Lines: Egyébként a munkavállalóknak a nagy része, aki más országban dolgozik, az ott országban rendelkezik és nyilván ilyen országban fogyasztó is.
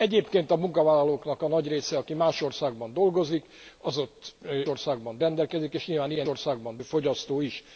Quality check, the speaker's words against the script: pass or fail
pass